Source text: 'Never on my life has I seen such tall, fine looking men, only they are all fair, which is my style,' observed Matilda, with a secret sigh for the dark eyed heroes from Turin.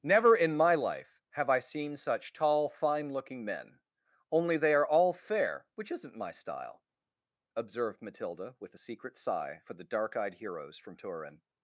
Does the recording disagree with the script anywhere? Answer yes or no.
yes